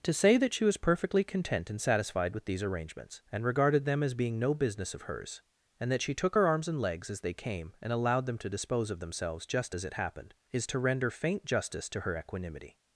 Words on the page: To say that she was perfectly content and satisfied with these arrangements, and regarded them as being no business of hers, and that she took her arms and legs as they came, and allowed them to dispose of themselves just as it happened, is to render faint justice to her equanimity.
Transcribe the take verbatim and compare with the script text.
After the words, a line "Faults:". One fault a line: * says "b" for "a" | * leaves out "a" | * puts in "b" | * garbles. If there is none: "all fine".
To say that she was perfectly content and satisfied with these arrangements, and regarded them as being no business of hers, and that she took her arms and legs as they came, and allowed them to dispose of themselves just as it happened, is to render faint justice to her equanimity.
Faults:
all fine